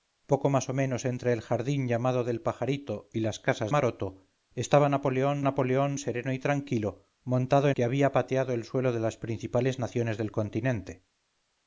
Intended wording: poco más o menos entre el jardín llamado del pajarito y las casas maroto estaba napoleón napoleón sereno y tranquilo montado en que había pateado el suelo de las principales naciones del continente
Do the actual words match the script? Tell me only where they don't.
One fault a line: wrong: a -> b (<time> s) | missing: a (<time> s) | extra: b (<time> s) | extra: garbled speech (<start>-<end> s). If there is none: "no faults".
no faults